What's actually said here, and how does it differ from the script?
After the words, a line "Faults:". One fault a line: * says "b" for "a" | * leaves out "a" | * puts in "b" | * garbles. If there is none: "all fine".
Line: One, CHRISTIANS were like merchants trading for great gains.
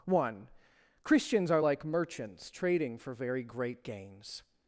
One, CHRISTIANS are like merchants trading for very great gains.
Faults:
* says "are" for "were"
* puts in "very"